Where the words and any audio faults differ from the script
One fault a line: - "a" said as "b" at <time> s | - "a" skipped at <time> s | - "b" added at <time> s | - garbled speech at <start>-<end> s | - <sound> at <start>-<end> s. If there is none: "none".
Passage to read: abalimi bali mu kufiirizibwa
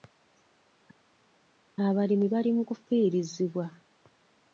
none